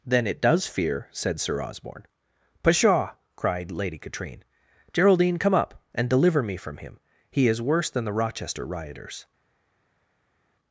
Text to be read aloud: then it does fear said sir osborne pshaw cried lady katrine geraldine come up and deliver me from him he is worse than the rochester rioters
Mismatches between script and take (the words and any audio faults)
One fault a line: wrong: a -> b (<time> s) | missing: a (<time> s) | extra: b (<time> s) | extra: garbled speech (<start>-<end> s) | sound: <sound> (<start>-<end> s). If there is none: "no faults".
no faults